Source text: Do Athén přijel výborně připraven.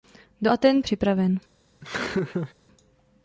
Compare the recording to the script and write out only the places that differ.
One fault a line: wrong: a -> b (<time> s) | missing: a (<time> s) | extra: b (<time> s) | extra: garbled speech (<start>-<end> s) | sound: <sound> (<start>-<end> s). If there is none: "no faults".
missing: přijel výborně (0.8 s)
sound: laugh (1.8-2.5 s)